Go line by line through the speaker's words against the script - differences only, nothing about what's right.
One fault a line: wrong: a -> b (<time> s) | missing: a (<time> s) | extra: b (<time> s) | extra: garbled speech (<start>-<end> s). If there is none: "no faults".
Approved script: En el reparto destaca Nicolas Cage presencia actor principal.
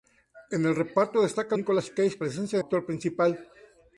no faults